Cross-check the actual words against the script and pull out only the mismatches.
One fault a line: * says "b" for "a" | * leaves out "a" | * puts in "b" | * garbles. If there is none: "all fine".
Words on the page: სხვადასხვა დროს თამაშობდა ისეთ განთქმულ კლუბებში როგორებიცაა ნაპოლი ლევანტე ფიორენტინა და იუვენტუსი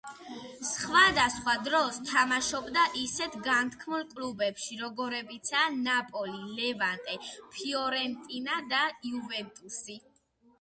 all fine